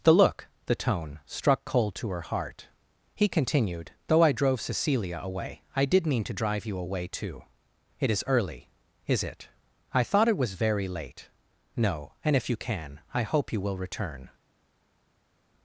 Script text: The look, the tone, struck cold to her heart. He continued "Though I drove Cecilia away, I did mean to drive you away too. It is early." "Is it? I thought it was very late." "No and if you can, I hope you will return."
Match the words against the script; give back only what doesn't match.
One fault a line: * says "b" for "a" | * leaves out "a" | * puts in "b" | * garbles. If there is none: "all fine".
all fine